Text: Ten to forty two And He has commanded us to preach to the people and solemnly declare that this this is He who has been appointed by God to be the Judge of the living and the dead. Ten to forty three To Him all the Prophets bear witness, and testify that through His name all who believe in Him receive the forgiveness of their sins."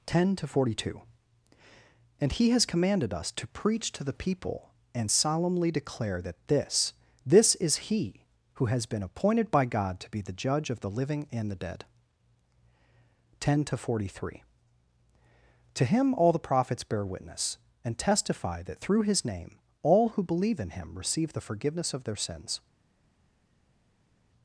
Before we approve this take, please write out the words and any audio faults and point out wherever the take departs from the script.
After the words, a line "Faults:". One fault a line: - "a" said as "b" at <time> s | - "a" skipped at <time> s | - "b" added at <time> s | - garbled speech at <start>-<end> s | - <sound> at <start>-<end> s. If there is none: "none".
Ten to forty two And He has commanded us to preach to the people and solemnly declare that this this is He who has been appointed by God to be the Judge of the living and the dead. Ten to forty three To Him all the Prophets bear witness, and testify that through His name all who believe in Him receive the forgiveness of their sins."
Faults:
none